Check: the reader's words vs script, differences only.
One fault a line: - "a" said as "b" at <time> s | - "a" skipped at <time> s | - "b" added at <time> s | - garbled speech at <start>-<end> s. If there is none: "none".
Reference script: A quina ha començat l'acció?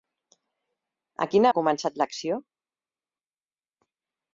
none